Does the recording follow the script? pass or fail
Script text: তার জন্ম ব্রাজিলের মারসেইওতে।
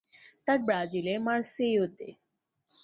fail